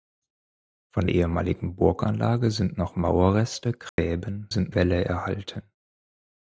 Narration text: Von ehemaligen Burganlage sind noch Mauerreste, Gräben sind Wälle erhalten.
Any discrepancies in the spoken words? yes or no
no